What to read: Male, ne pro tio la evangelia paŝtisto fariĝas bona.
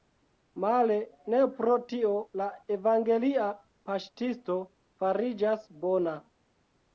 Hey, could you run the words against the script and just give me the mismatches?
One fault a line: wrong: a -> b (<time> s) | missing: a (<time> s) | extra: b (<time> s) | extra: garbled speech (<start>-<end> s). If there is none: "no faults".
no faults